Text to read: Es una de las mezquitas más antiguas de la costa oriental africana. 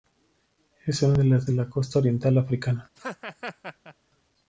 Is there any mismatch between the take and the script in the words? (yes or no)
yes